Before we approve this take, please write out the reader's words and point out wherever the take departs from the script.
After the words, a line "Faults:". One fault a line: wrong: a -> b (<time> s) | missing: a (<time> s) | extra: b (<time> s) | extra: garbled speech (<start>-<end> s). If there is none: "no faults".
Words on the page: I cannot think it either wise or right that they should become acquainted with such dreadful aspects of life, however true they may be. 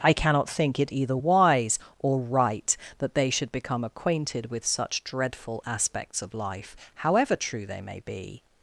I cannot think it either wise or right that they should become acquainted with such dreadful aspects of life, however true they may be.
Faults:
no faults